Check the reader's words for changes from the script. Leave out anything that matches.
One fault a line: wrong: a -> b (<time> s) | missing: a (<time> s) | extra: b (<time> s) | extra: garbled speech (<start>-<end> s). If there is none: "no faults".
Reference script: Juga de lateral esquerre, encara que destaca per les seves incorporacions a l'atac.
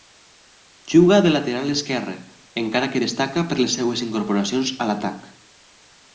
no faults